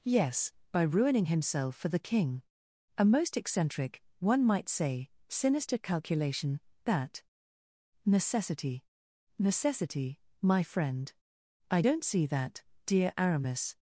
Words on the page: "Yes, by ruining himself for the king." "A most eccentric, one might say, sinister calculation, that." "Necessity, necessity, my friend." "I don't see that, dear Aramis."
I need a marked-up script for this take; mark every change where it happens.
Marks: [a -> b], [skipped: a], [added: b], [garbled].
"Yes, by ruining himself for the king." "A most eccentric, one might say, sinister calculation, that." "Necessity, necessity, my friend." "I don't see that, dear Aramis."